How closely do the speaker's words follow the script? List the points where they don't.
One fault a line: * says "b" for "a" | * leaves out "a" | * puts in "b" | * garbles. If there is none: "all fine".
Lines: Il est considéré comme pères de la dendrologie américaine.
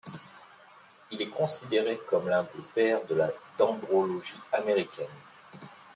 * puts in "l'un des"